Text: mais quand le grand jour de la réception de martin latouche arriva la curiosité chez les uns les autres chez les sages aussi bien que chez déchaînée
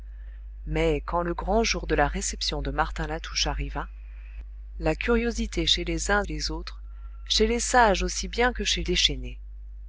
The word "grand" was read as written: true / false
true